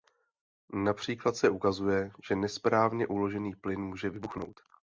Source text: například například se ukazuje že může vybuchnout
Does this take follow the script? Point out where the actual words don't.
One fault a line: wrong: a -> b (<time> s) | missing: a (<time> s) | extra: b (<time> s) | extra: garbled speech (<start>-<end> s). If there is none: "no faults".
missing: například (1.4 s)
extra: nesprávně uložený plyn (2.4 s)